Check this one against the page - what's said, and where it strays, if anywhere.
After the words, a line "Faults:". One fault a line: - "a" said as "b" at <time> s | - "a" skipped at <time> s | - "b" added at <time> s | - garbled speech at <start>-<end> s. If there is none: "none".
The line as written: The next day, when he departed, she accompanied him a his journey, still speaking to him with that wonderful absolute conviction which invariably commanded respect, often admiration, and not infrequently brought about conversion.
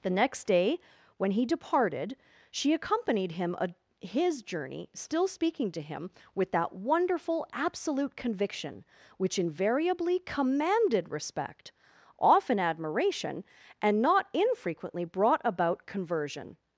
The next day, when he departed, she accompanied him a his journey, still speaking to him with that wonderful absolute conviction which invariably commanded respect, often admiration, and not infrequently brought about conversion.
Faults:
none